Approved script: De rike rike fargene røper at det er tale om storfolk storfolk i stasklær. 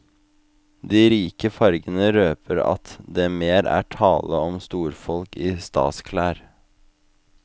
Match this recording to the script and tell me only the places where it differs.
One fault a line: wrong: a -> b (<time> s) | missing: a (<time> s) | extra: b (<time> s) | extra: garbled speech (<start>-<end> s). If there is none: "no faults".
missing: rike (1.5 s)
extra: mer (3.4 s)
missing: storfolk (5.4 s)